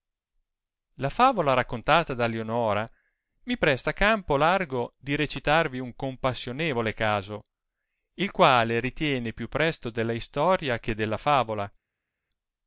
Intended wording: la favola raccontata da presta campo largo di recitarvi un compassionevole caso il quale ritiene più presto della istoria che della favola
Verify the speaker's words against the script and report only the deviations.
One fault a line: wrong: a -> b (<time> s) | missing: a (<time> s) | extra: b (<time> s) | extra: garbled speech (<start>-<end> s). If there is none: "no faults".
extra: lionora mi (2.2 s)